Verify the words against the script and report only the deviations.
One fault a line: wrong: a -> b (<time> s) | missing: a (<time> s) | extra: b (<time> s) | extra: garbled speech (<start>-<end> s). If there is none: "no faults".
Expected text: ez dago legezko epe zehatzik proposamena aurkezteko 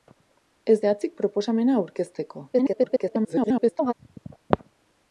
missing: dago legezko epe (0.8 s)
extra: garbled speech (2.5-3.9 s)